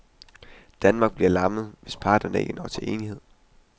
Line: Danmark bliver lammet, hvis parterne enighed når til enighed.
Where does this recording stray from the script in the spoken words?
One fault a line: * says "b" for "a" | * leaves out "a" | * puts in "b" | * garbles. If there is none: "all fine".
* says "ikke" for "enighed"